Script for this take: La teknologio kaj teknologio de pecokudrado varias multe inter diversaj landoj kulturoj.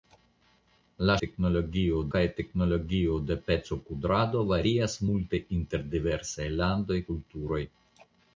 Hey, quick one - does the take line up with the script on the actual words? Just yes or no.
yes